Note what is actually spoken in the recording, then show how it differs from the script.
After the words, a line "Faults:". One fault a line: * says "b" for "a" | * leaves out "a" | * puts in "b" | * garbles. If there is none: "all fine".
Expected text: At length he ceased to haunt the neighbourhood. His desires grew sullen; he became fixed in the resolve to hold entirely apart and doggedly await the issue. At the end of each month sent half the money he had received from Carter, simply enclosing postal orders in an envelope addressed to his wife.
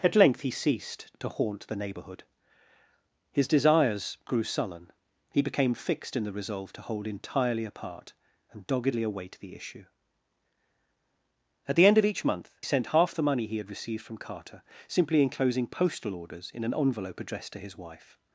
At length he ceased to haunt the neighbourhood. His desires grew sullen; he became fixed in the resolve to hold entirely apart and doggedly await the issue. At the end of each month sent half the money he had received from Carter, simply enclosing postal orders in an envelope addressed to his wife.
Faults:
all fine